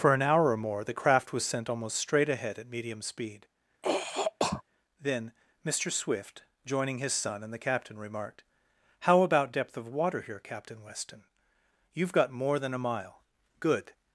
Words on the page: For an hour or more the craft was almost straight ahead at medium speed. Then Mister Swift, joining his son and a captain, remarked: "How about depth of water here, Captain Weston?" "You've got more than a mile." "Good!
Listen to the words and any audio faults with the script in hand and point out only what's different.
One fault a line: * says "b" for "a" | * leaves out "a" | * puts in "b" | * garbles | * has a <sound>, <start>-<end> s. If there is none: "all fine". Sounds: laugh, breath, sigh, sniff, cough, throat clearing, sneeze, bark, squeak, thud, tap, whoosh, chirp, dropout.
* puts in "sent"
* has a throat clearing, 3.8-4.6 s
* says "the" for "a"